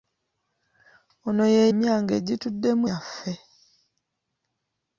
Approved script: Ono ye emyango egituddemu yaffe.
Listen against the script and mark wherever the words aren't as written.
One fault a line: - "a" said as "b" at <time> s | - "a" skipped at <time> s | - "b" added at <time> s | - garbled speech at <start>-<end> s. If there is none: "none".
none